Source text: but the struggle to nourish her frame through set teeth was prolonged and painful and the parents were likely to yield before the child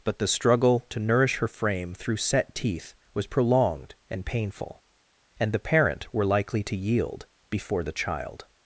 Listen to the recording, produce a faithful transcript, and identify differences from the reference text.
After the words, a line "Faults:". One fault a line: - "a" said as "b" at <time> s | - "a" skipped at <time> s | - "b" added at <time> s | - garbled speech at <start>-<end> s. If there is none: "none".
but the struggle to nourish her frame through set teeth was prolonged and painful and the parent were likely to yield before the child
Faults:
- "parents" said as "parent" at 5.6 s